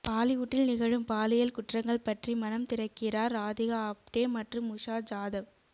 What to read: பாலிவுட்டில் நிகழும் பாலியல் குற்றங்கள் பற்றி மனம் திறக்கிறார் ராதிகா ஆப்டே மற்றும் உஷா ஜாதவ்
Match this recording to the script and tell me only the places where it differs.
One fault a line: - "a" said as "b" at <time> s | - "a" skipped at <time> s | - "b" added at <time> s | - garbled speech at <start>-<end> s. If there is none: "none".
none